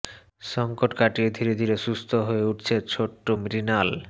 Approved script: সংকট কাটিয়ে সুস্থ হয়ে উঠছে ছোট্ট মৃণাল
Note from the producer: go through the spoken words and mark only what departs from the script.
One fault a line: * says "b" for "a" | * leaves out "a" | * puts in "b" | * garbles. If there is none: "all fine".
* puts in "ধীরে ধীরে"